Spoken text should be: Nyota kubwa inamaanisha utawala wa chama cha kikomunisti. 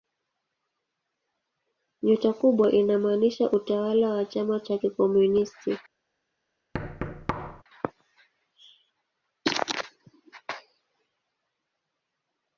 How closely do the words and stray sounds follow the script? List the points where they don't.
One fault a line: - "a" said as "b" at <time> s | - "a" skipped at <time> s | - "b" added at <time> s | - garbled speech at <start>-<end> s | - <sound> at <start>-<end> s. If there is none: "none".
- thud at 6.7-7.6 s